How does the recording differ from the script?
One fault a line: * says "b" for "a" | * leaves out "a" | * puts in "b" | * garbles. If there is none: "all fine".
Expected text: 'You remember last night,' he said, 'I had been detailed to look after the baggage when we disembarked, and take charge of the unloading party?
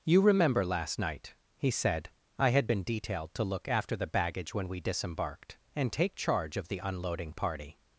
all fine